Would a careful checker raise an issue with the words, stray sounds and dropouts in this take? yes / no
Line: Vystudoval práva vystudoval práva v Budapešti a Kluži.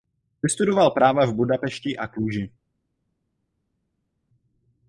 yes